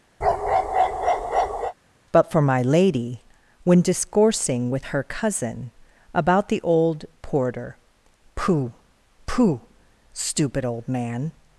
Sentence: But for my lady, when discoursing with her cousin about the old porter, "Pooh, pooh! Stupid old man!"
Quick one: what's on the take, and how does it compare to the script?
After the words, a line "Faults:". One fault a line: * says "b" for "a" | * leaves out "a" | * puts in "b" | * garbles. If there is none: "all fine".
But for my lady, when discoursing with her cousin about the old porter, "Pooh, pooh! Stupid old man!"
Faults:
all fine